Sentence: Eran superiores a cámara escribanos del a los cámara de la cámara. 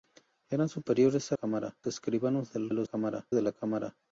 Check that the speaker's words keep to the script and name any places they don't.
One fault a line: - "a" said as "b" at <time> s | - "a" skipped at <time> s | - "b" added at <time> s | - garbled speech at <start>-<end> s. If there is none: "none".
none